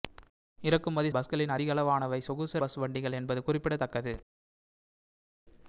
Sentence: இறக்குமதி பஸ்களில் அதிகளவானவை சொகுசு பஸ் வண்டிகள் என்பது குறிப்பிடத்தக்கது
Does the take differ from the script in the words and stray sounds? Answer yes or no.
no